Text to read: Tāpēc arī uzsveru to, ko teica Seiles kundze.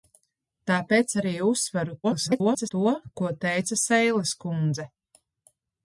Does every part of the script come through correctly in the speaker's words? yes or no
no